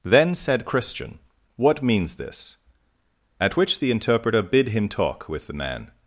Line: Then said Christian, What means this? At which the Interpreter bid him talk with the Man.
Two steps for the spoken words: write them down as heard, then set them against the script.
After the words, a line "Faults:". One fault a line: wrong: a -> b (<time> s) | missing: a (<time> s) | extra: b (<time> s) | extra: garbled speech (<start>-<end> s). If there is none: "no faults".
Then said Christian, What means this? At which the Interpreter bid him talk with the Man.
Faults:
no faults